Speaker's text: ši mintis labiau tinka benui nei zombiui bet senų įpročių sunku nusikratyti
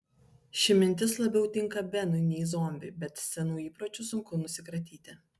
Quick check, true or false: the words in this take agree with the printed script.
true